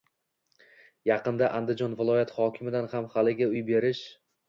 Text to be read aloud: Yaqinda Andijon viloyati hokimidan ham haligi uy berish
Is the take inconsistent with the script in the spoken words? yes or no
no